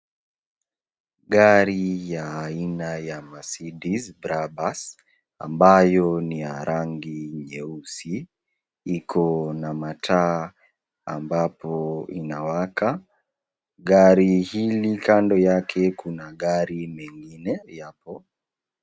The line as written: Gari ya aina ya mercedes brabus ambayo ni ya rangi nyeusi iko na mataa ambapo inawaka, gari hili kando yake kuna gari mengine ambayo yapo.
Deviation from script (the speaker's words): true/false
true